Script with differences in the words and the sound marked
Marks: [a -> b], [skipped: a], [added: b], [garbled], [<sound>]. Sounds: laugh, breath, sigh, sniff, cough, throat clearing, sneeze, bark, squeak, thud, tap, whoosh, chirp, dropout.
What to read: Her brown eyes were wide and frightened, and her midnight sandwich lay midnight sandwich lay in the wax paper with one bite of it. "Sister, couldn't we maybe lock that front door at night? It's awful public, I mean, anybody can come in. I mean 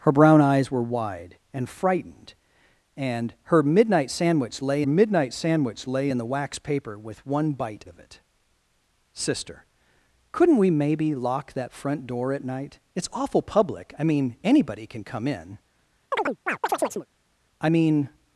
Her brown eyes were wide and frightened, and her midnight sandwich lay midnight sandwich lay in the wax paper with one bite of it. "Sister, couldn't we maybe lock that front door at night? It's awful public, I mean, anybody can come in. [chirp] I mean